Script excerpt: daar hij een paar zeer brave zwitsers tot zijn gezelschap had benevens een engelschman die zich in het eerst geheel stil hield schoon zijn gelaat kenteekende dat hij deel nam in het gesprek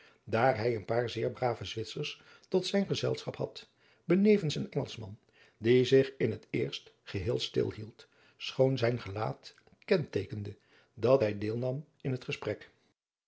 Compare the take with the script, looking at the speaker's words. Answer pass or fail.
pass